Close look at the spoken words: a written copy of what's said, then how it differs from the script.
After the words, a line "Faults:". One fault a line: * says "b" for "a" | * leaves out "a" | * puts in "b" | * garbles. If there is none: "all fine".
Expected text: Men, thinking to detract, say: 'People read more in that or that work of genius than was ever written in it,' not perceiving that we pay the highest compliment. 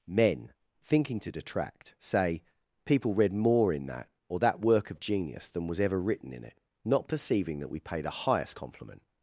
Men, thinking to detract, say: 'People read more in that or that work of genius than was ever written in it,' not perceiving that we pay the highest compliment.
Faults:
all fine